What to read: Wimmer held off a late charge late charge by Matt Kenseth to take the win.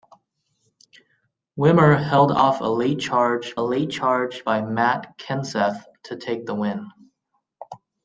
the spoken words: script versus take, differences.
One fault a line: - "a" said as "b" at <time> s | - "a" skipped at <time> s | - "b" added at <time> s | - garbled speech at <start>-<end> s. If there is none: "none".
none